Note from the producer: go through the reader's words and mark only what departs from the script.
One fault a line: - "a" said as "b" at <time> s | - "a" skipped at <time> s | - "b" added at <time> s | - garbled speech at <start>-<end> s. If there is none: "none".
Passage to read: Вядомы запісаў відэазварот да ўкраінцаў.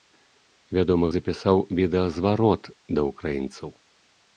none